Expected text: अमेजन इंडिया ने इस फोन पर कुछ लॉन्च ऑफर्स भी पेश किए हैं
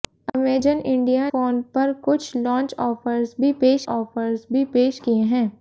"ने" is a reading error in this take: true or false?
true